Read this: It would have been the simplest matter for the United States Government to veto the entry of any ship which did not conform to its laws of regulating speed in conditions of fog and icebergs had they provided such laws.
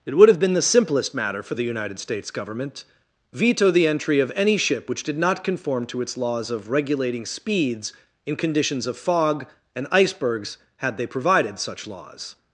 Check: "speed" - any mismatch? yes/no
yes